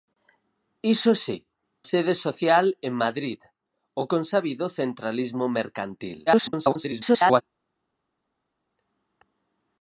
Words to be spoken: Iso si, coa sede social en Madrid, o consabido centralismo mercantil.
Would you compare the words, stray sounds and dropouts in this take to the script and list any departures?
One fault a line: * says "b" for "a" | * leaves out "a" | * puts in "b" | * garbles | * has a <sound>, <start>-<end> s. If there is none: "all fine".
* leaves out "coa"
* garbles